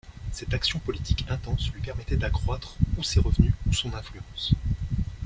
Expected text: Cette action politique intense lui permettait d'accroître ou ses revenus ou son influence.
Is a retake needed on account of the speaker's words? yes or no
no